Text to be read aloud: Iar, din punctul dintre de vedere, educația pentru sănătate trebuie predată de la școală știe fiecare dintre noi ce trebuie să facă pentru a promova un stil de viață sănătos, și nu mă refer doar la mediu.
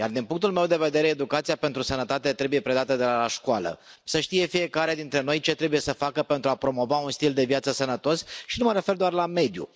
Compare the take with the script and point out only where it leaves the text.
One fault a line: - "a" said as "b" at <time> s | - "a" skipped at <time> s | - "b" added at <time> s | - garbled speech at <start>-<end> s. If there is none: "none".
- "dintre" said as "meu" at 0.5 s
- "să" added at 4.0 s